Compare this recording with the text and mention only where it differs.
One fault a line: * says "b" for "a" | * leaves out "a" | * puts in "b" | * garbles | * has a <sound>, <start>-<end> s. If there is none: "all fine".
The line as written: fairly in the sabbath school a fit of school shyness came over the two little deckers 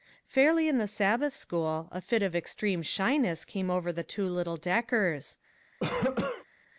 * says "extreme" for "school"
* has a cough, 5.8-6.5 s